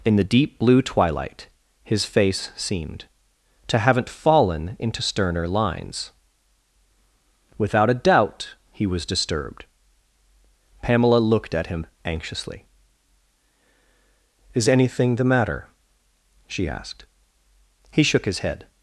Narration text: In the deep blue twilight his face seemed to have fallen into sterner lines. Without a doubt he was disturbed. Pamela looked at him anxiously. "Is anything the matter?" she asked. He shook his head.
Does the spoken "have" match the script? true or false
false